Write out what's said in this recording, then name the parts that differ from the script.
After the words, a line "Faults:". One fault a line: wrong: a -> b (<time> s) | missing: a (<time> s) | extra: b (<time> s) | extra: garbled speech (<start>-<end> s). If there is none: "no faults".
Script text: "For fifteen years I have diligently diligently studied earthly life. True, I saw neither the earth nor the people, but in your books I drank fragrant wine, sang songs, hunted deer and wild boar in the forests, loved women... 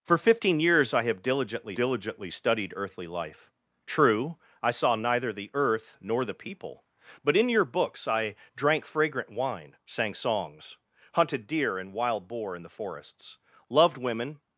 "For fifteen years I have diligently diligently studied earthly life. True, I saw neither the earth nor the people, but in your books I drank fragrant wine, sang songs, hunted deer and wild boar in the forests, loved women...
Faults:
no faults